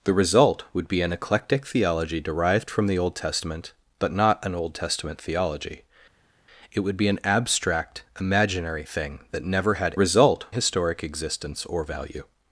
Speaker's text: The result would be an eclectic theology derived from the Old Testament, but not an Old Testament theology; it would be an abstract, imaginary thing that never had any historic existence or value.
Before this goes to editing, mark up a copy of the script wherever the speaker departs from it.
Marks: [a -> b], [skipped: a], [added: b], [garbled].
The result would be an eclectic theology derived from the Old Testament, but not an Old Testament theology; it would be an abstract, imaginary thing that never had [any -> result] historic existence or value.